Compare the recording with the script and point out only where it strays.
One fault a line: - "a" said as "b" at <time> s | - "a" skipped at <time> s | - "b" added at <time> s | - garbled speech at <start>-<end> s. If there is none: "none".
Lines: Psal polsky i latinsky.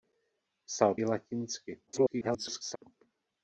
- "polsky" skipped at 0.9 s
- garbled speech at 1.9-2.8 s